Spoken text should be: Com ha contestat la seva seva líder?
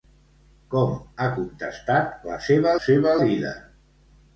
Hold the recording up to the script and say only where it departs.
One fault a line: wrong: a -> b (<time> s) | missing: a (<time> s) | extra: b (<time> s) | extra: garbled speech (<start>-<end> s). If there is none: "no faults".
no faults